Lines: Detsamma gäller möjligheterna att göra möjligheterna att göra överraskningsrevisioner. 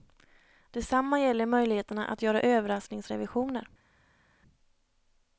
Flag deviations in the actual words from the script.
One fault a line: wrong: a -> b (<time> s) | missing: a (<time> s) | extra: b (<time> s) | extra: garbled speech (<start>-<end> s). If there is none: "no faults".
missing: möjligheterna att göra (2.4 s)